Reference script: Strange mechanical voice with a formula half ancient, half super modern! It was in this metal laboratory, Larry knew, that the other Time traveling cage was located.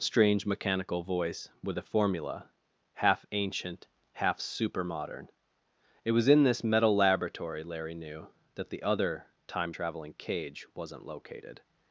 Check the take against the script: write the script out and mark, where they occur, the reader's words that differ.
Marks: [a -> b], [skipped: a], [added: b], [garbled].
Strange mechanical voice with a formula half ancient, half super modern! It was in this metal laboratory, Larry knew, that the other Time traveling cage [was -> wasn't] located.